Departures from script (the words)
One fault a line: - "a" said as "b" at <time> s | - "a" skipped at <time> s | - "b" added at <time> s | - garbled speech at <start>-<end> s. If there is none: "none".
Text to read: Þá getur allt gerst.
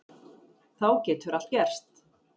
none